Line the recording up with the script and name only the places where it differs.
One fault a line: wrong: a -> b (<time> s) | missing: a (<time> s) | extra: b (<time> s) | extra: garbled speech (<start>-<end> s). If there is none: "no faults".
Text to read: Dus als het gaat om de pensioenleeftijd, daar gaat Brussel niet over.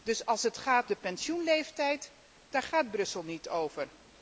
missing: om (0.9 s)